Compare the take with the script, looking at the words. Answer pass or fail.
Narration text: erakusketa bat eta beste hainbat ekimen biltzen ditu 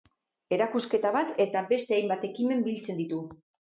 pass